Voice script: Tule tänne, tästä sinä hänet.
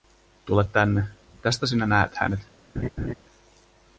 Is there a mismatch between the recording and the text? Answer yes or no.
yes